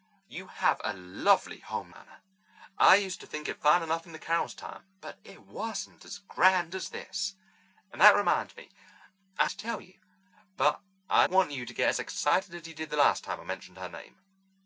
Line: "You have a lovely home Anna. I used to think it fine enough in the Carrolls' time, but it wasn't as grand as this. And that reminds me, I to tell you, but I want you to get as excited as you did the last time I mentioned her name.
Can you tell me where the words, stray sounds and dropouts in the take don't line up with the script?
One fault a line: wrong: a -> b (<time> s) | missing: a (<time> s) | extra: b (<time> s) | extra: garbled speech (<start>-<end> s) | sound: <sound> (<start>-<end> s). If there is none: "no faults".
no faults